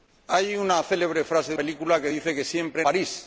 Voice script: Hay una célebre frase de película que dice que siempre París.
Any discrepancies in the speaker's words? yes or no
no